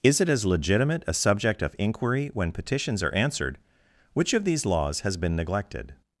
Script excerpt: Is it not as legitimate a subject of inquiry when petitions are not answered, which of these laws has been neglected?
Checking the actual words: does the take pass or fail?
fail